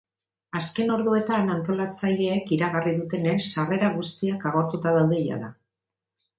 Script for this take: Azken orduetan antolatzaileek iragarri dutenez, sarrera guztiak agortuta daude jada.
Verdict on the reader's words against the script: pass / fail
pass